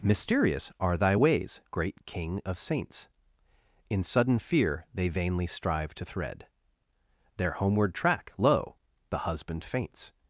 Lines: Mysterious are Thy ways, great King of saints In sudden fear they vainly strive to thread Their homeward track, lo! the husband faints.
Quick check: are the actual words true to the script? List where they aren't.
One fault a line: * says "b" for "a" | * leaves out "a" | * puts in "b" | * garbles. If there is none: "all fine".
all fine